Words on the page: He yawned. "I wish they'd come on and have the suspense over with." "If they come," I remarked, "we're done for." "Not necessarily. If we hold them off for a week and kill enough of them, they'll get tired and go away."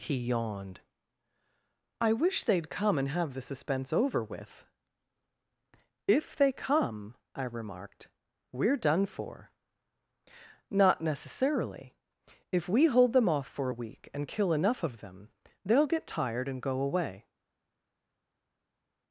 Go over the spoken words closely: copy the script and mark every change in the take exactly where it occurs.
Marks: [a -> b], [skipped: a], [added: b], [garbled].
He yawned. "I wish they'd come [skipped: on] and have the suspense over with." "If they come," I remarked, "we're done for." "Not necessarily. If we hold them off for a week and kill enough of them, they'll get tired and go away."